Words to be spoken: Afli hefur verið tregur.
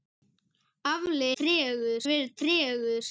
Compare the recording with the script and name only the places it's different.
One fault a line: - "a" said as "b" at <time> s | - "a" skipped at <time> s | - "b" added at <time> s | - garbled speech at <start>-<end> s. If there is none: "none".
- "hefur" said as "tregur" at 1.4 s